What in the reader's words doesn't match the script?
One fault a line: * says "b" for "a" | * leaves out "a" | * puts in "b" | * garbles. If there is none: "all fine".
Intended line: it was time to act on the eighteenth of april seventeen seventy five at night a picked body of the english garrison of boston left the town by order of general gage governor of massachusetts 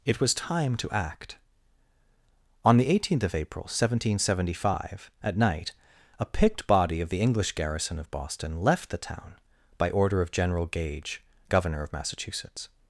all fine